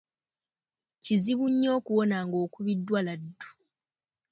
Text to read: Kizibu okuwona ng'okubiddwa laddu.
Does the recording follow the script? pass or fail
fail